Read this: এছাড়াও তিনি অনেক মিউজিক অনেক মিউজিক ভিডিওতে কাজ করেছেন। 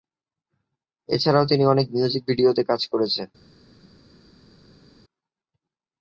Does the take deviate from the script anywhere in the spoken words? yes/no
yes